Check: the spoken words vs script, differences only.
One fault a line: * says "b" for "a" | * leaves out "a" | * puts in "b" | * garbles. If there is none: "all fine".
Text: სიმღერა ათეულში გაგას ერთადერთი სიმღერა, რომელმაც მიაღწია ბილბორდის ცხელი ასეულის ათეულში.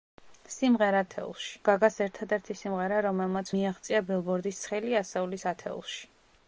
all fine